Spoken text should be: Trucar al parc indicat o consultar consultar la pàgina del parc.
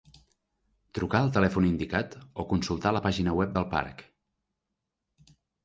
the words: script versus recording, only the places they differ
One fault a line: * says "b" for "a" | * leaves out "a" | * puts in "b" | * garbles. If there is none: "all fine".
* says "telèfon" for "parc"
* leaves out "consultar"
* puts in "web"